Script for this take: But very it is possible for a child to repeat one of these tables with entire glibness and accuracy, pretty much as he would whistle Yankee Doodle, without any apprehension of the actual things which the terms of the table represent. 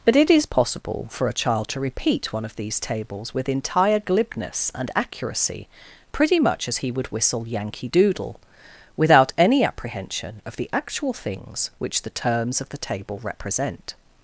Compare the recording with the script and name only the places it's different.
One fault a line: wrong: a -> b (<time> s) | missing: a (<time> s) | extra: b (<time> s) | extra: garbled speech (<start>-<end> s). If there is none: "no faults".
missing: very (0.1 s)